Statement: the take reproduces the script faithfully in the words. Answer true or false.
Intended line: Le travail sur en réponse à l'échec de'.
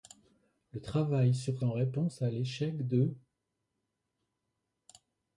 true